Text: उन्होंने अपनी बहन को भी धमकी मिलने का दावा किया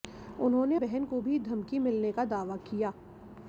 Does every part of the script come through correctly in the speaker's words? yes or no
no